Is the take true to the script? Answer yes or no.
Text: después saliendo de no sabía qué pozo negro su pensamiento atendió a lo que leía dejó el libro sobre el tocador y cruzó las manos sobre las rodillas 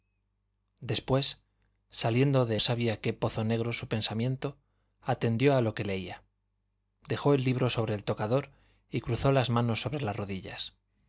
no